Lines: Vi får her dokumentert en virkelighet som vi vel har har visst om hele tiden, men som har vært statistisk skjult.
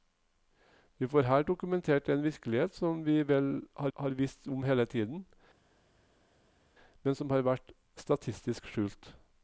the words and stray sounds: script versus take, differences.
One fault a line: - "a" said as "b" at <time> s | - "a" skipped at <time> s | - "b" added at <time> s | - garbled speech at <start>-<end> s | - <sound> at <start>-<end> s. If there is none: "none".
none